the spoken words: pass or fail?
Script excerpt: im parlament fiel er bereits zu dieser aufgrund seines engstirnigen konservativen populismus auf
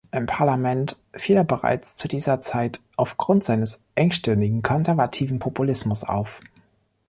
fail